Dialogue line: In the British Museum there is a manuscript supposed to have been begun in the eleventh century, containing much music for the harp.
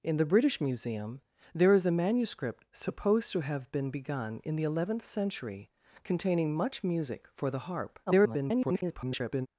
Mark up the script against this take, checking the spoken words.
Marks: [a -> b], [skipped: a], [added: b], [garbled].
In the British Museum there is a manuscript supposed to have been begun in the eleventh century, containing much music for the harp. [garbled]